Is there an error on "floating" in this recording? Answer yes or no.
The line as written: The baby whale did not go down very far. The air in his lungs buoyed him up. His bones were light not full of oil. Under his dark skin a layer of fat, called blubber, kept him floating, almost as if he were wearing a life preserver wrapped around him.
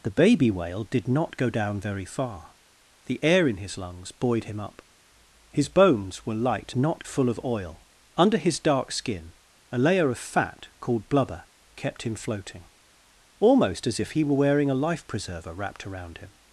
no